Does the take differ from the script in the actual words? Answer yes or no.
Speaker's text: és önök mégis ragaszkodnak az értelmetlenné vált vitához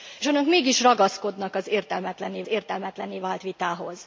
yes